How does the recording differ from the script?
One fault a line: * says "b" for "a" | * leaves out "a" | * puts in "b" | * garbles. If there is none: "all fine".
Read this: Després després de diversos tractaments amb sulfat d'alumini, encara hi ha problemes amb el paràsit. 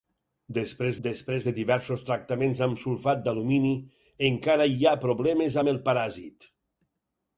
all fine